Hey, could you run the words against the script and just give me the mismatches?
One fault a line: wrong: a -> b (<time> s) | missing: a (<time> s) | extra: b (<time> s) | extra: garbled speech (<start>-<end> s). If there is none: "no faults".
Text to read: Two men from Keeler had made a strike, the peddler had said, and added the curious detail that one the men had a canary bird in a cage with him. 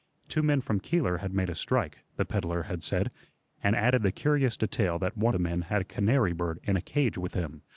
no faults